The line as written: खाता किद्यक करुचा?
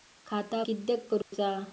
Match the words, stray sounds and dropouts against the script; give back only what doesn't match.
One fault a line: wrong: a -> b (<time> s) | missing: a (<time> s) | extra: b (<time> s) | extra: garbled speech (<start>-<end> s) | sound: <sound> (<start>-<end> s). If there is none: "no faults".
sound: dropout (1.2-1.3 s)